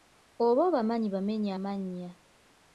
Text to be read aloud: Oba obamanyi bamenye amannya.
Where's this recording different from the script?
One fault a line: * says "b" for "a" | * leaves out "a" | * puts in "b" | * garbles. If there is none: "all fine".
all fine